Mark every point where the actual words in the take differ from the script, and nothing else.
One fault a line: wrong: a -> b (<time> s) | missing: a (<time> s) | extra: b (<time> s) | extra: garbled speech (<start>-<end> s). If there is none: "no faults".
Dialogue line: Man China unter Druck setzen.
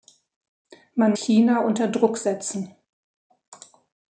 no faults